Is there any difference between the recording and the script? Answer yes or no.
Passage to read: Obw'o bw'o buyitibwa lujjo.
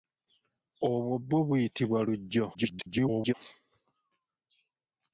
yes